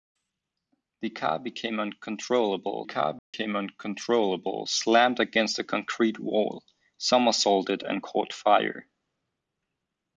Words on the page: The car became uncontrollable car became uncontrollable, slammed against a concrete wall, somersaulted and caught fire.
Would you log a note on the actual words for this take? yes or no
no